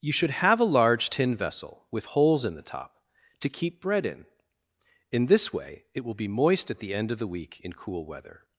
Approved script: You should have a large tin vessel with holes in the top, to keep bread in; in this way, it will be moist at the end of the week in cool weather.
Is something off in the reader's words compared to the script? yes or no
no